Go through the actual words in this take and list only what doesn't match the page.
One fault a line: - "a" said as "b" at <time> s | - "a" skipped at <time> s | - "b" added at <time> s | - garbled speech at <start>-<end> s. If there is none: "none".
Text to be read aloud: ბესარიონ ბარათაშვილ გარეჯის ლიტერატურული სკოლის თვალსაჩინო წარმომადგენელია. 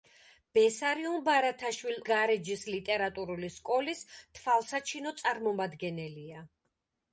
none